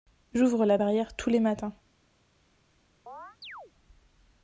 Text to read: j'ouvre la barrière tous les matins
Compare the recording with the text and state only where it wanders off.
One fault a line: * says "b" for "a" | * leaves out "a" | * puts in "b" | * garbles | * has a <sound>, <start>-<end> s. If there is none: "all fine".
* has a chirp, 3.1-3.7 s